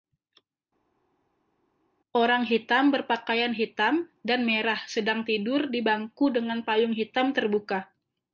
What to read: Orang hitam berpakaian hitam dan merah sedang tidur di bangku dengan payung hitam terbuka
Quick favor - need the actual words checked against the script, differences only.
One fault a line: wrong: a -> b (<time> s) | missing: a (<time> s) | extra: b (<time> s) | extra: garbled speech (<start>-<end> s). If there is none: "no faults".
no faults